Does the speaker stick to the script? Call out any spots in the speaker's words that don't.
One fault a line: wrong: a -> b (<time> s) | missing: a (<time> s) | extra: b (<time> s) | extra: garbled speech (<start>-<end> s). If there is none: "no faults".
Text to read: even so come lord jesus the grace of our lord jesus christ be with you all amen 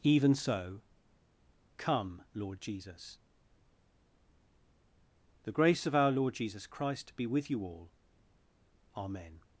no faults